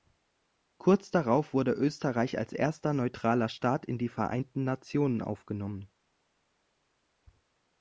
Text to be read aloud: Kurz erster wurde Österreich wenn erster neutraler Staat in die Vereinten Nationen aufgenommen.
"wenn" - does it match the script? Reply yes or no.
no